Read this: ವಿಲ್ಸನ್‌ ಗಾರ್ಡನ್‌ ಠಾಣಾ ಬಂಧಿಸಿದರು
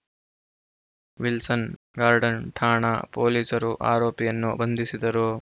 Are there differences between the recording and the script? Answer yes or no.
yes